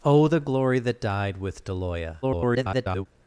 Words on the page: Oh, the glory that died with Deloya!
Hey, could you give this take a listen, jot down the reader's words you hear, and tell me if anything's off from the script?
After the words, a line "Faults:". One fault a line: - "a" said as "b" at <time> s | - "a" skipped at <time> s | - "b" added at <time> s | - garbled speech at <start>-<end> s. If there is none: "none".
Oh, the glory that died with Deloya! [garbled]
Faults:
- garbled speech at 2.2-3.1 s